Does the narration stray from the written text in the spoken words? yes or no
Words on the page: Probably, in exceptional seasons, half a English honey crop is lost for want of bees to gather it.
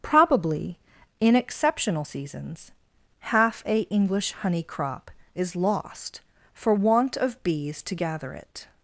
no